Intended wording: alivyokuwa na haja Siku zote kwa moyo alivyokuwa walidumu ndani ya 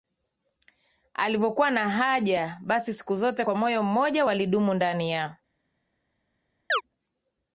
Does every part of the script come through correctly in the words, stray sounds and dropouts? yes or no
no